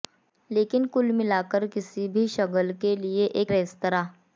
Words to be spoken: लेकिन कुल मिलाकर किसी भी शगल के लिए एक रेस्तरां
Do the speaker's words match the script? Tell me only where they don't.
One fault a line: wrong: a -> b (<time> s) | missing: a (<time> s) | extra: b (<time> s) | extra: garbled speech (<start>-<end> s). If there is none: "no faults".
no faults